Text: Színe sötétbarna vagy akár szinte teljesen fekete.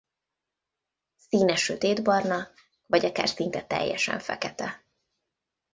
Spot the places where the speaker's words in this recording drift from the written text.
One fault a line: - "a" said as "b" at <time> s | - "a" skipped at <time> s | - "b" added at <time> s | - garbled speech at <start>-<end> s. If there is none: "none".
none